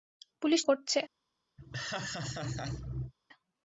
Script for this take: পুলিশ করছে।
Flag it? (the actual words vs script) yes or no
no